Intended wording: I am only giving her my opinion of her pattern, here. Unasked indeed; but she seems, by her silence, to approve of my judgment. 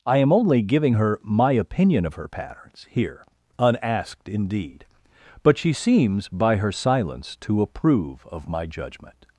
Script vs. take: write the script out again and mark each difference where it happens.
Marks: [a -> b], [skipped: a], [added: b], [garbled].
I am only giving her my opinion of her [pattern, -> patterns] here. Unasked indeed; but she seems, by her silence, to approve of my judgment.